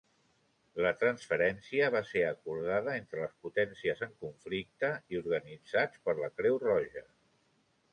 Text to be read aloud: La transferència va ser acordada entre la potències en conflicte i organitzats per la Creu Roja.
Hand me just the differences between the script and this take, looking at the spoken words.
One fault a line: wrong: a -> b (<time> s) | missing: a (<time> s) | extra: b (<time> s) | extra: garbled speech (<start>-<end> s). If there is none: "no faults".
wrong: la -> les (3.2 s)